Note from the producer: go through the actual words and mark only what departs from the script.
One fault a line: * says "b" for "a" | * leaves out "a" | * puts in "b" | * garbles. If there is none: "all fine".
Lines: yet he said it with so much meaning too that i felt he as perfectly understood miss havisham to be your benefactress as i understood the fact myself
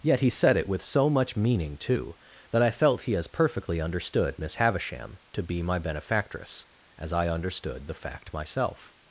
* says "my" for "your"